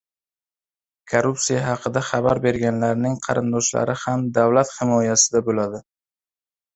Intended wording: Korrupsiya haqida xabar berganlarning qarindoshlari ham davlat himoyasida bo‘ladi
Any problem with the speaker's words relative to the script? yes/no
no